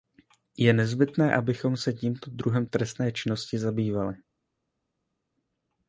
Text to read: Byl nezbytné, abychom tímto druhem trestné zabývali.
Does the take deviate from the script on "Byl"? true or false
true